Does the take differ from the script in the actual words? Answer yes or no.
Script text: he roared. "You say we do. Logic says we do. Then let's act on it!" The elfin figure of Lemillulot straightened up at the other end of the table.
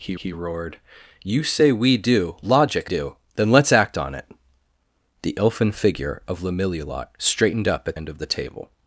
yes